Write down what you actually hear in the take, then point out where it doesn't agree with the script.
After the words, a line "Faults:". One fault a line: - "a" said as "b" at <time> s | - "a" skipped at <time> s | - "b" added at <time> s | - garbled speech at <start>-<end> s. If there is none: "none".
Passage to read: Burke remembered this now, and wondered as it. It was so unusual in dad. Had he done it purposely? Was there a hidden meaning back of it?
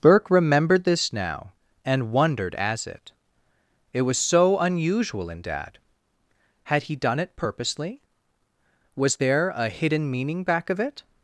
Burke remembered this now, and wondered as it. It was so unusual in dad. Had he done it purposely? Was there a hidden meaning back of it?
Faults:
none